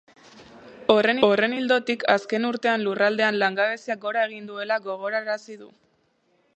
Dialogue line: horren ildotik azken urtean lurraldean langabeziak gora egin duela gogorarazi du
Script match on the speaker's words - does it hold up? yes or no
no